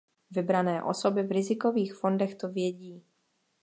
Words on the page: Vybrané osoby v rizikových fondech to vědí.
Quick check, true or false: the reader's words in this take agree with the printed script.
true